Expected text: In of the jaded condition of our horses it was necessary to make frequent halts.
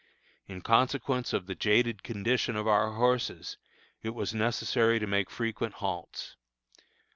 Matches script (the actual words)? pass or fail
fail